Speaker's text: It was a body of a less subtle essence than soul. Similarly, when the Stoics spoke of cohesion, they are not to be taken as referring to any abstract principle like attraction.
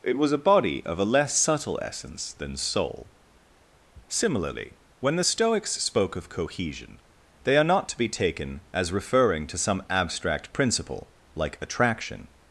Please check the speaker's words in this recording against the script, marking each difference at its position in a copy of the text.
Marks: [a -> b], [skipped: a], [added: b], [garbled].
It was a body of a less subtle essence than soul. Similarly, when the Stoics spoke of cohesion, they are not to be taken as referring to [any -> some] abstract principle like attraction.